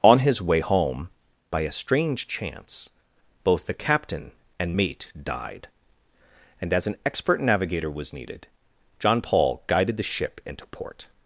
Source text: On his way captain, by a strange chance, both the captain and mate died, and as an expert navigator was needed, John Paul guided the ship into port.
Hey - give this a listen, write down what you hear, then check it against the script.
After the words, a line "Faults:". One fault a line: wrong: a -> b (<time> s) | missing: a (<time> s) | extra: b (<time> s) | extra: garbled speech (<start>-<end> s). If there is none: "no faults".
On his way home, by a strange chance, both the captain and mate died, and as an expert navigator was needed, John Paul guided the ship into port.
Faults:
wrong: captain -> home (0.6 s)